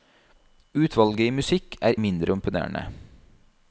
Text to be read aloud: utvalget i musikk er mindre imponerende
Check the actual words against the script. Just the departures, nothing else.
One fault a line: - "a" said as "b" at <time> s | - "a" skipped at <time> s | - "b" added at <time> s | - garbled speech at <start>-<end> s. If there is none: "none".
none